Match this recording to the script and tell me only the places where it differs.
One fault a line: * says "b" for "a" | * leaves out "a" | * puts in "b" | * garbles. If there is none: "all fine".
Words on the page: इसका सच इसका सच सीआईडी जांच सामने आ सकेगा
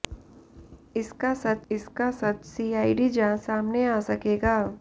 all fine